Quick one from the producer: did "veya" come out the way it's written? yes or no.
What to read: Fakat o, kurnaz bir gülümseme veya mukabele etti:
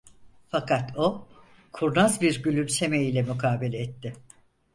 no